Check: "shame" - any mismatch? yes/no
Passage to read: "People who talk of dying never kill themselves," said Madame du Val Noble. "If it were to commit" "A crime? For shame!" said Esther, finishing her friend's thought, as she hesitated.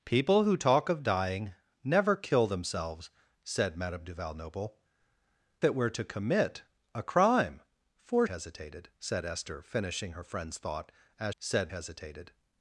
yes